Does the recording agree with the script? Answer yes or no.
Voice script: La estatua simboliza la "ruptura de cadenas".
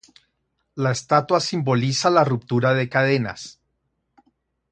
yes